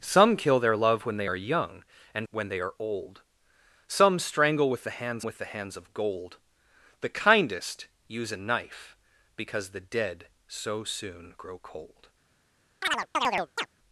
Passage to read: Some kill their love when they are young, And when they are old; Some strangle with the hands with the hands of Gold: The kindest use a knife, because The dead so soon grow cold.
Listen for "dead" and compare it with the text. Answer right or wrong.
right